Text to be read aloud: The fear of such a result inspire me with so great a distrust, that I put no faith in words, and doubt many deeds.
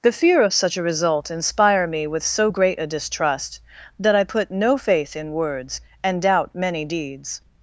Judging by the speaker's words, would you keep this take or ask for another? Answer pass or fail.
pass